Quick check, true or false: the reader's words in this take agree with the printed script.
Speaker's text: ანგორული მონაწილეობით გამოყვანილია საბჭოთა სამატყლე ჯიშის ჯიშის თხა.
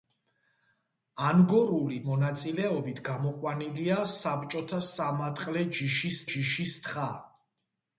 true